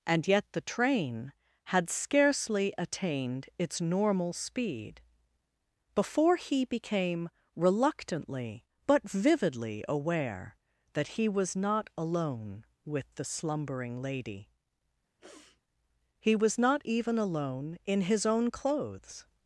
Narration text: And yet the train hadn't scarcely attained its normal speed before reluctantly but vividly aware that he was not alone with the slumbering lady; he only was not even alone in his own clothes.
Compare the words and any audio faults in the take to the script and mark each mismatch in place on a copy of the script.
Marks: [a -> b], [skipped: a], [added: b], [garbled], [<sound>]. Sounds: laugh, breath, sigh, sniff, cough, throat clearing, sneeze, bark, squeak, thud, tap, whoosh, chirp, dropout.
And yet the train [hadn't -> had] scarcely attained its normal speed before [added: he became] reluctantly but vividly aware that he was not alone with the slumbering lady; [sniff] he [skipped: only] was not even alone in his own clothes.